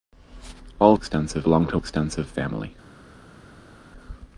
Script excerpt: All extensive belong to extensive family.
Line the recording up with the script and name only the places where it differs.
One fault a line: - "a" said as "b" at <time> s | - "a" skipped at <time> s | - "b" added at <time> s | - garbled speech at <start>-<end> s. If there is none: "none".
none